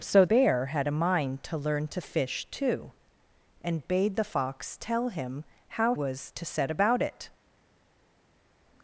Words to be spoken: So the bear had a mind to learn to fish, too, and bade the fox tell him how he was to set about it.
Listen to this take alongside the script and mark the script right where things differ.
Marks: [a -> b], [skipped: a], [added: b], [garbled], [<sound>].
So [skipped: the] bear had a mind to learn to fish, too, and bade the fox tell him how [skipped: he] was to set about it.